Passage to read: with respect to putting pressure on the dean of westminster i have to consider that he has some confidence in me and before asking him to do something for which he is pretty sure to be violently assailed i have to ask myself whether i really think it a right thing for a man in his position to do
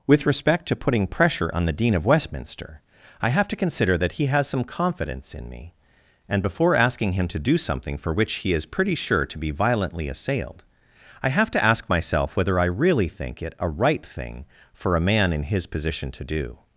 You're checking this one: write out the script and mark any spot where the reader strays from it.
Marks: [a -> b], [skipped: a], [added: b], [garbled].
with respect to putting pressure on the dean of westminster i have to consider that he has some confidence in me and before asking him to do something for which he is pretty sure to be violently assailed i have to ask myself whether i really think it a right thing for a man in his position to do